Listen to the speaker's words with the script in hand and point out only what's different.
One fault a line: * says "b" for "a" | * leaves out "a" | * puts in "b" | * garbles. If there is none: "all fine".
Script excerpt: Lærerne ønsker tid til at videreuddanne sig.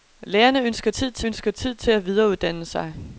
* puts in "ønsker tid til"